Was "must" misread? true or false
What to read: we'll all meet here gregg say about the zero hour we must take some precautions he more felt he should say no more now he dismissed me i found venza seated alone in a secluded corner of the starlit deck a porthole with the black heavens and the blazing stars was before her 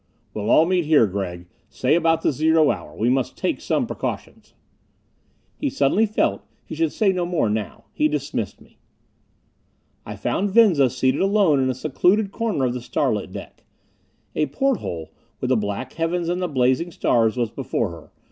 false